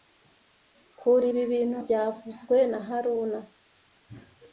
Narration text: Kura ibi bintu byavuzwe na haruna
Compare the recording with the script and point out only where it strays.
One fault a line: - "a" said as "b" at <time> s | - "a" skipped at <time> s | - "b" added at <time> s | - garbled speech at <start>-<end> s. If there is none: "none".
none